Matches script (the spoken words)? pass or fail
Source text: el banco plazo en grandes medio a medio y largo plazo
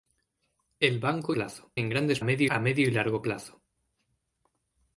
pass